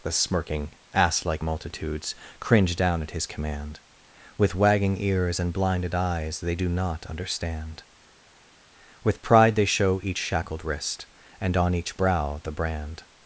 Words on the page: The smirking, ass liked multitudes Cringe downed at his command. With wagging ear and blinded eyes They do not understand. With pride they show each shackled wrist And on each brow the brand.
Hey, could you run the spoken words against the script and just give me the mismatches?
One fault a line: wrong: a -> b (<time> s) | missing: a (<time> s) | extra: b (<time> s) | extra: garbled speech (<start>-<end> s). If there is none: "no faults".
wrong: liked -> like (1.2 s)
wrong: downed -> down (2.8 s)
wrong: ear -> ears (5.0 s)